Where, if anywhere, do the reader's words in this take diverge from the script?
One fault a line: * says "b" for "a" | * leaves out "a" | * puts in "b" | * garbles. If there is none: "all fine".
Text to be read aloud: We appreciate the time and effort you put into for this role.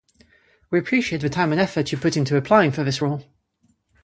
* puts in "applying"